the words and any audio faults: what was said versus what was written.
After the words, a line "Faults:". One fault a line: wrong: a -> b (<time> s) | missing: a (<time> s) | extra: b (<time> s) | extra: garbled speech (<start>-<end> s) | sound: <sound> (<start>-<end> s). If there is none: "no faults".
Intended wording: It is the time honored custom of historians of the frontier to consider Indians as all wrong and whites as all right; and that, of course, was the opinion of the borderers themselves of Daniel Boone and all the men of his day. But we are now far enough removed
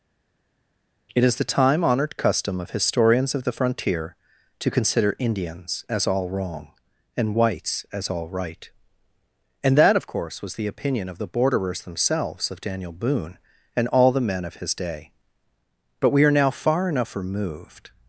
It is the time honored custom of historians of the frontier to consider Indians as all wrong and whites as all right; and that, of course, was the opinion of the borderers themselves of Daniel Boone and all the men of his day. But we are now far enough removed
Faults:
no faults